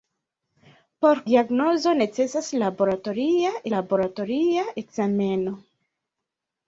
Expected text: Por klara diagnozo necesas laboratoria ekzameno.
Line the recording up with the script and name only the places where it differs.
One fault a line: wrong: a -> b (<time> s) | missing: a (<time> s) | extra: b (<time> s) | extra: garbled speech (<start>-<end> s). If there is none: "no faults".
missing: klara (1.2 s)
extra: laboratoria (3.8 s)